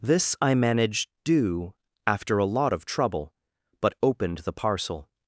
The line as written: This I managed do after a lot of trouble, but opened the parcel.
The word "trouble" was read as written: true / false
true